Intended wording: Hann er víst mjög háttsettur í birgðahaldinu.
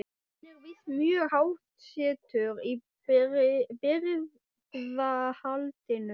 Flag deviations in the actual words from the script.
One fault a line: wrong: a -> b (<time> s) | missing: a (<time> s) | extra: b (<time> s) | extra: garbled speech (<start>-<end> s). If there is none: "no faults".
no faults